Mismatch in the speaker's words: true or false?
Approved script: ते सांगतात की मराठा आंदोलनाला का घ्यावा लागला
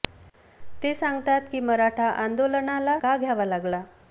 false